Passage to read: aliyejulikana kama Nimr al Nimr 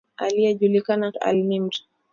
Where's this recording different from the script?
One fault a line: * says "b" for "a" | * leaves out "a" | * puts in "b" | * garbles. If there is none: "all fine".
* leaves out "kama Nimr"